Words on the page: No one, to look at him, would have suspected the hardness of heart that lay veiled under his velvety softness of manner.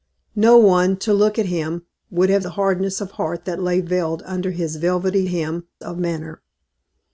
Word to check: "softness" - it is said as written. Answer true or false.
false